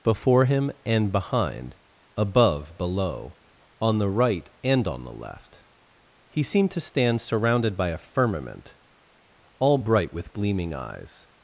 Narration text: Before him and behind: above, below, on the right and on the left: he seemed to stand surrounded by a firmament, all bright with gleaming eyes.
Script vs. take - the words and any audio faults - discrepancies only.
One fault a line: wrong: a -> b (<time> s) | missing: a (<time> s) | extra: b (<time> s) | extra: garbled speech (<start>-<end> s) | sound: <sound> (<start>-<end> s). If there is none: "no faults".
no faults